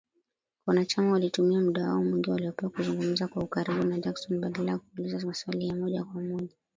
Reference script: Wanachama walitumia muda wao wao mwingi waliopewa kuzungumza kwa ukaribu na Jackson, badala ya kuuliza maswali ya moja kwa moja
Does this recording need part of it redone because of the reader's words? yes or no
yes